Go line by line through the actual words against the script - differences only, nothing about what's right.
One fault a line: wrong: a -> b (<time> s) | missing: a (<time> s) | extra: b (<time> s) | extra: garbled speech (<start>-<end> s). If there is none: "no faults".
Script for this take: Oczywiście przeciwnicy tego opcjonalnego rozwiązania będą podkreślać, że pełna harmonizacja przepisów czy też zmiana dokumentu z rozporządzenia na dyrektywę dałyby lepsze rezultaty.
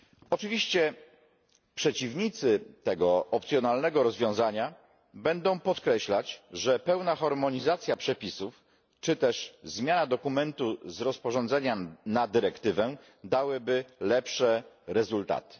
no faults